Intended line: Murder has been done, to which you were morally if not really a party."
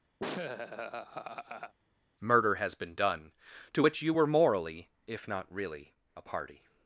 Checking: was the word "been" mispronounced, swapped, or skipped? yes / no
no